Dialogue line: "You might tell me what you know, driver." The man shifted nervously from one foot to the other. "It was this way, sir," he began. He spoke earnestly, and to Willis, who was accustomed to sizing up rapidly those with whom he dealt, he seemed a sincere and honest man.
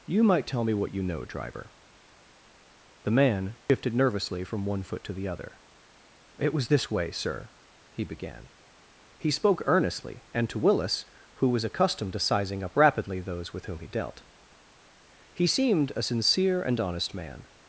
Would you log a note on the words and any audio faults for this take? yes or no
yes